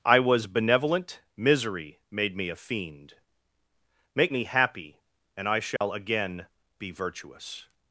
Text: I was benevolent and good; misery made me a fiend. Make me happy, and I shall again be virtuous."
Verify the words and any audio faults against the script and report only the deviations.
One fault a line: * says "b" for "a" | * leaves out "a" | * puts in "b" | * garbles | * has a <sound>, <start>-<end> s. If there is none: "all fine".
* leaves out "and good"
* has a dropout, 5.8-5.8 s